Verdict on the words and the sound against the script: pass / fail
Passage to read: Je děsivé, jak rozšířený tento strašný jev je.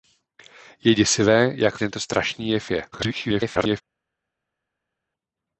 fail